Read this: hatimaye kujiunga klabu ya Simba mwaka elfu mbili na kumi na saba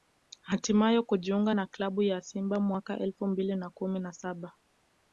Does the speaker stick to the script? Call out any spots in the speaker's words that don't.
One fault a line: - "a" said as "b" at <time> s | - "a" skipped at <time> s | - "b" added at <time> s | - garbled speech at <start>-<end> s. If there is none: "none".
- "na" added at 1.5 s